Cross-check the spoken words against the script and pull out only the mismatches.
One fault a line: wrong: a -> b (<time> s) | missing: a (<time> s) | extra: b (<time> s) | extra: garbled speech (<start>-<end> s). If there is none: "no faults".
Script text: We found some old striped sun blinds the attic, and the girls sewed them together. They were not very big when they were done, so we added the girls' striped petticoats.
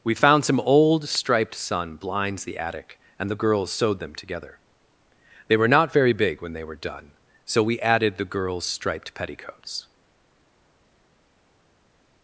no faults